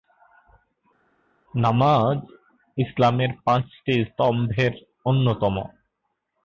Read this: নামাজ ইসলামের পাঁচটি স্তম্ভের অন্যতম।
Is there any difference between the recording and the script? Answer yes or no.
no